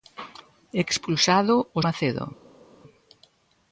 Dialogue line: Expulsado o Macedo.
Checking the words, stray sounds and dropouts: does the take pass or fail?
pass